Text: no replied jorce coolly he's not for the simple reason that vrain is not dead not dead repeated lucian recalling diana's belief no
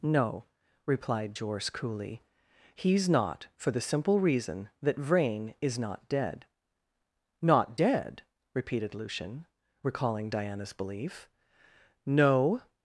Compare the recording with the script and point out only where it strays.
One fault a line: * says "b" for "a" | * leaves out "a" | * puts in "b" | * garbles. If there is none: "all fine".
all fine